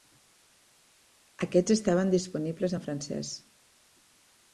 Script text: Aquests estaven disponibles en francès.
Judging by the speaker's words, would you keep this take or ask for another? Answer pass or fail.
pass